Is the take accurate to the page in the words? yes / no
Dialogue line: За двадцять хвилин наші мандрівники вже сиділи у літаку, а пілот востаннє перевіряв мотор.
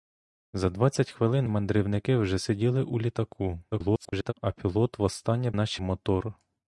no